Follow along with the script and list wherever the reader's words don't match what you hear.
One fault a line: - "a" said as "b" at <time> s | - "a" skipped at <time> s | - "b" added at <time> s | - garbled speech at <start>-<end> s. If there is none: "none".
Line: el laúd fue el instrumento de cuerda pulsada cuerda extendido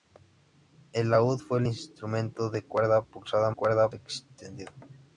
none